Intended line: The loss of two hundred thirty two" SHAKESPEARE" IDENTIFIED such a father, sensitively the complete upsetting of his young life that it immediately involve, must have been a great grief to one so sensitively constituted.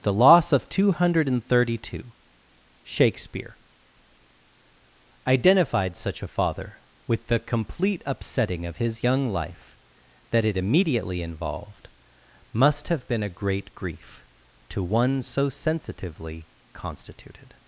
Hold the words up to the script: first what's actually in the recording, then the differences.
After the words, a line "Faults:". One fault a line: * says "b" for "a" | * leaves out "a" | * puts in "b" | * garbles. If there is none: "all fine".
The loss of two hundred thirty two" SHAKESPEARE" IDENTIFIED such a father, with the complete upsetting of his young life that it immediately involved, must have been a great grief to one so sensitively constituted.
Faults:
* says "with" for "sensitively"
* says "involved" for "involve"